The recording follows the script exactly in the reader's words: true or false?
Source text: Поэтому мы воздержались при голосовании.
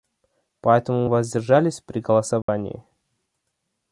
true